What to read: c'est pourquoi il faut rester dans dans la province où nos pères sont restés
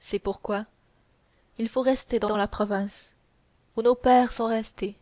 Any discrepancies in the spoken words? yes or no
no